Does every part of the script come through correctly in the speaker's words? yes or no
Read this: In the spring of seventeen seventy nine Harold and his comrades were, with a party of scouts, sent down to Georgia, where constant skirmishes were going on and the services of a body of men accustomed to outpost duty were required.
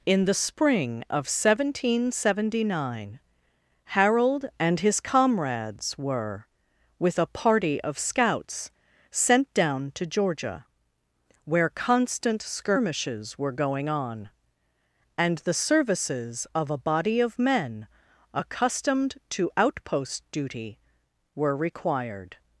yes